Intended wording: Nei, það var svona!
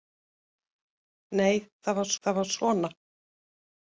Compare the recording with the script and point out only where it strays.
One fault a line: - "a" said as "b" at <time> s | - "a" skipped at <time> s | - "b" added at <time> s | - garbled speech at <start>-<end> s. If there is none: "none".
- "það var" added at 2.2 s